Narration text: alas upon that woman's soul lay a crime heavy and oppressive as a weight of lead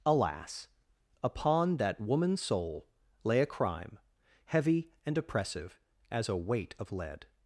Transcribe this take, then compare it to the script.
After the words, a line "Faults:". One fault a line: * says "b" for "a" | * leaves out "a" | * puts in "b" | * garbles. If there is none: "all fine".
alas upon that woman's soul lay a crime heavy and oppressive as a weight of lead
Faults:
all fine